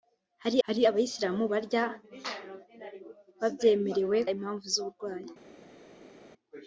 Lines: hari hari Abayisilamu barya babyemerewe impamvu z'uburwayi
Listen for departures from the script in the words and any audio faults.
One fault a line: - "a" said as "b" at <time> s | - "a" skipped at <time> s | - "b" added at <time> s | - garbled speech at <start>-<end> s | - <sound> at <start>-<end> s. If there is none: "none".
none